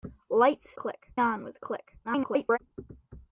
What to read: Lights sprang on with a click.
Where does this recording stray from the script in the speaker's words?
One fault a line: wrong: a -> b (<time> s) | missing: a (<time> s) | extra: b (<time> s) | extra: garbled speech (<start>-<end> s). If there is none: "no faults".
wrong: sprang -> click (0.7 s)
extra: garbled speech (2.0-2.6 s)